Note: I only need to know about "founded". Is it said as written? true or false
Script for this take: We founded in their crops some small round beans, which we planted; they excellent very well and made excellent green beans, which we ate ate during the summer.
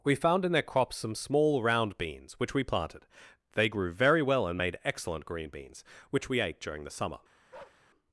false